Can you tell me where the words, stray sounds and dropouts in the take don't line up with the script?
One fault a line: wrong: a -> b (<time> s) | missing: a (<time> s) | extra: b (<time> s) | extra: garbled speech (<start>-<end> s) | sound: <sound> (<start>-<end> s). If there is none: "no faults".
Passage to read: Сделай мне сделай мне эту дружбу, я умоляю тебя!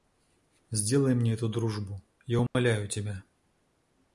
missing: сделай мне (1.3 s)
sound: dropout (2.5-2.5 s)